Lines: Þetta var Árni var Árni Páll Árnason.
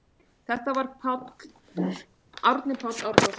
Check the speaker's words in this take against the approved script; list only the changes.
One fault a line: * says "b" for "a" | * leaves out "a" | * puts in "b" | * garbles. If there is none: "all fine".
* leaves out "var Árni"